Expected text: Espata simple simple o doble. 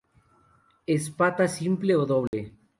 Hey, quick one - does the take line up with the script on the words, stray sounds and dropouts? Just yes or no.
no